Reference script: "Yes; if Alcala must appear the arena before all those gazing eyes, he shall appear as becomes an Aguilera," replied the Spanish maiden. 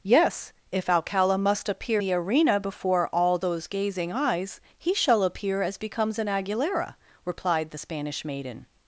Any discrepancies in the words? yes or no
no